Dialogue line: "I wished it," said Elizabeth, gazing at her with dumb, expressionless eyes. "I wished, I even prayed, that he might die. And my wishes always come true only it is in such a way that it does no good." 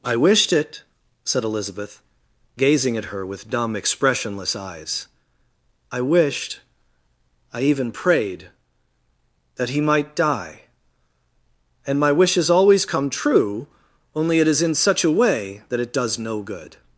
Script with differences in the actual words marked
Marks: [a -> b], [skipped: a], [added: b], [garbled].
"I wished it," said Elizabeth, gazing at her with dumb, expressionless eyes. "I wished, I even prayed, that he might die. And my wishes always come true only it is in such a way that it does no good."